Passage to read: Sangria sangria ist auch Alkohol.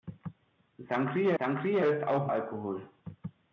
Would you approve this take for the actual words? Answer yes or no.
yes